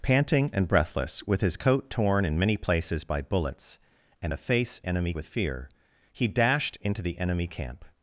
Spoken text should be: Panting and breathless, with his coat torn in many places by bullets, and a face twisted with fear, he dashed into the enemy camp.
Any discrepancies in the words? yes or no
yes